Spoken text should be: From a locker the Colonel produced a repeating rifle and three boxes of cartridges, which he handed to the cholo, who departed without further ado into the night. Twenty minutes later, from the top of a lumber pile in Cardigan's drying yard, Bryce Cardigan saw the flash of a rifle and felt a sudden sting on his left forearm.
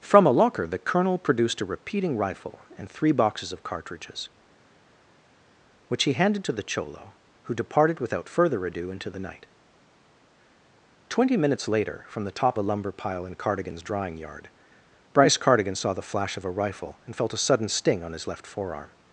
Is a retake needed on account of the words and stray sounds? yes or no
yes